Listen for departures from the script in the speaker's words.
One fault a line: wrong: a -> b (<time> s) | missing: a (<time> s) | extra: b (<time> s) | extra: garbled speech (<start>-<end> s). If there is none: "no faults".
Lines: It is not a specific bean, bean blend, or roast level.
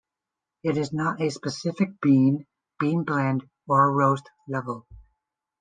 no faults